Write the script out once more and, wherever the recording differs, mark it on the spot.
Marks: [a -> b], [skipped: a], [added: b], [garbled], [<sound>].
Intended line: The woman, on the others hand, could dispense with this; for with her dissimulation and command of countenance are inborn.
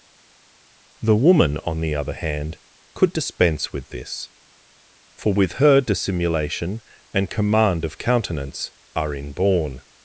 The woman, on the [others -> other] hand, could dispense with this; for with her dissimulation and command of countenance are inborn.